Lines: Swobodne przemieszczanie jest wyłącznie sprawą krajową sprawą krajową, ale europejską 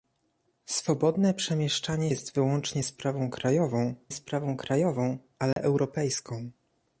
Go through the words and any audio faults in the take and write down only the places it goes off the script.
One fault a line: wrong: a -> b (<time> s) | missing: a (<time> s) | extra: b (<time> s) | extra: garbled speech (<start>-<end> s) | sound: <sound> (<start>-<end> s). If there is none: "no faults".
sound: dropout (5.5-5.6 s)